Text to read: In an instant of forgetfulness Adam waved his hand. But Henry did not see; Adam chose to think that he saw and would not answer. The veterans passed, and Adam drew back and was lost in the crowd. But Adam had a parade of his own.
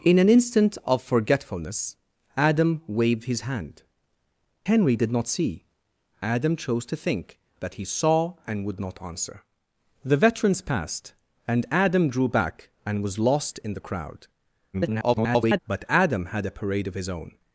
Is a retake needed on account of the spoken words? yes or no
yes